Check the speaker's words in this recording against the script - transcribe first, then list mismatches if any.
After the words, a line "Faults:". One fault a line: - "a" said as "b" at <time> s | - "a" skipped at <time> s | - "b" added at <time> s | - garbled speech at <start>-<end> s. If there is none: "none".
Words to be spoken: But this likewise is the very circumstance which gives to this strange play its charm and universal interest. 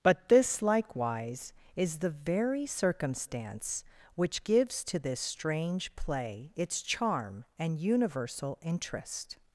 But this likewise is the very circumstance which gives to this strange play its charm and universal interest.
Faults:
none